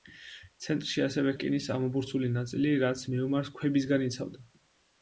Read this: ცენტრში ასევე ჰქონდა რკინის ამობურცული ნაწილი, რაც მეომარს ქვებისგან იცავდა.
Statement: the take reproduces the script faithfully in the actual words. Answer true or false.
false